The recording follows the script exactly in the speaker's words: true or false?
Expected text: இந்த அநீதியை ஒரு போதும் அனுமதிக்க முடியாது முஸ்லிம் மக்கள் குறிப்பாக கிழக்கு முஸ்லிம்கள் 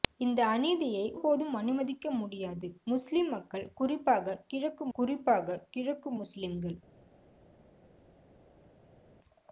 false